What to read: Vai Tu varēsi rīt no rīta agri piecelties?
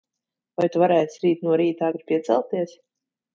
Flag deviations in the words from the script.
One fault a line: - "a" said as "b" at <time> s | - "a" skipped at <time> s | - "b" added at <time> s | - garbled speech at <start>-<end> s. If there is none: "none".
none